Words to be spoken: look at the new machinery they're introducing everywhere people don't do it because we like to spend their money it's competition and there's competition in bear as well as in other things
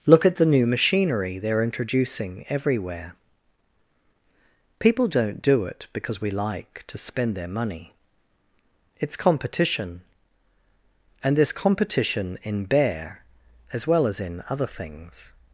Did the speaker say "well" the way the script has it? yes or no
yes